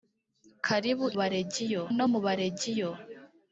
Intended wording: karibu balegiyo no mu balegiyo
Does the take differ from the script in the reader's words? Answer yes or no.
no